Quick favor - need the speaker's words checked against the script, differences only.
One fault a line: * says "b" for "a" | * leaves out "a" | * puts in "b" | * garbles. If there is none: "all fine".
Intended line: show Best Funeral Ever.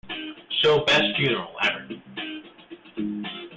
all fine